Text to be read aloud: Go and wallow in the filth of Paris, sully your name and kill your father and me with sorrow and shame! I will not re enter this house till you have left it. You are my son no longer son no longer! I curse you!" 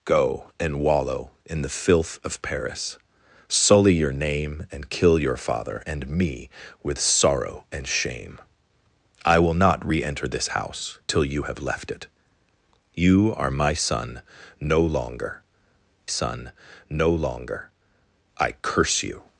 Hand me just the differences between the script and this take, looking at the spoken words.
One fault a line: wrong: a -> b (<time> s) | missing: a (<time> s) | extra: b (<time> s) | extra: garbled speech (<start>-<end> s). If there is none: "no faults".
no faults